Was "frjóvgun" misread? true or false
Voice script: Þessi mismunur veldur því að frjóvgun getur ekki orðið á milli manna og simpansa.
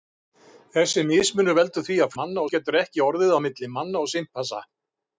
true